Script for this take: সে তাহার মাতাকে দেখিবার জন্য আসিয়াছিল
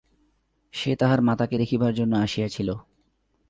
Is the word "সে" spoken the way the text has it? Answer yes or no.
yes